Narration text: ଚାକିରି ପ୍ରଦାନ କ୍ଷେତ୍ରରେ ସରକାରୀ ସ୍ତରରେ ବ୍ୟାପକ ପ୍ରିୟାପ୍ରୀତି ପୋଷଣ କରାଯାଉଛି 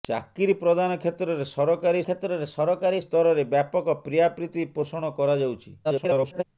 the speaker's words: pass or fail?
fail